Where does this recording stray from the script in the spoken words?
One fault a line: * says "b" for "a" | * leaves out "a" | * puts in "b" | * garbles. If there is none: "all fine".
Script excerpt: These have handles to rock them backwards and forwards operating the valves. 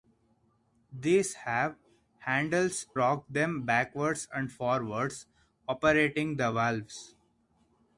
* leaves out "to"